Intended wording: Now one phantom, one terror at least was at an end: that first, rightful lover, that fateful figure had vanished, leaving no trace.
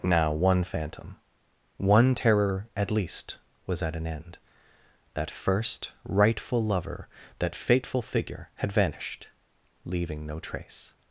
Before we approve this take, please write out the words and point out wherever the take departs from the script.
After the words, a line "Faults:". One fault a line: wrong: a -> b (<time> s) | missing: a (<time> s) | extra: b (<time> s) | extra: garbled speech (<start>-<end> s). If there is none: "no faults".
Now one phantom, one terror at least was at an end: that first, rightful lover, that fateful figure had vanished, leaving no trace.
Faults:
no faults